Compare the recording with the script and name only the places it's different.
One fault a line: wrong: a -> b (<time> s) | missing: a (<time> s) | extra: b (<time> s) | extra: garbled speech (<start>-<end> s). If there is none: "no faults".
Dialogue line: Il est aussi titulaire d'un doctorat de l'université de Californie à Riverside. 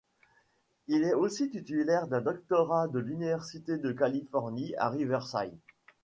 no faults